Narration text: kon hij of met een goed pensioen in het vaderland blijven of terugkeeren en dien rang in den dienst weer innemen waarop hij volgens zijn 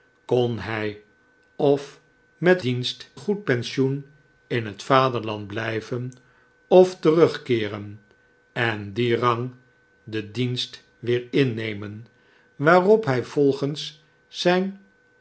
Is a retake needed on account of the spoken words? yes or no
yes